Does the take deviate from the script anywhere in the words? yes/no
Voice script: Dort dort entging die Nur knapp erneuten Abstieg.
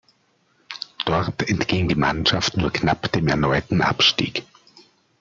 yes